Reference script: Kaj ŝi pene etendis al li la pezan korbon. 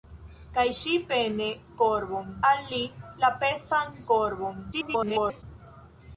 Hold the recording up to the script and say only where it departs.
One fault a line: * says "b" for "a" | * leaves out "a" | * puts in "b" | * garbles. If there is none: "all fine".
* says "korbon" for "etendis"
* garbles